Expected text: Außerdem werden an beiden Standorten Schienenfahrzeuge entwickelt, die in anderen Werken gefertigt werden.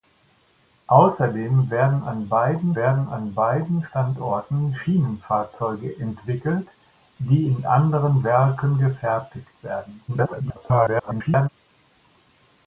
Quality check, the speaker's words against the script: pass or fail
fail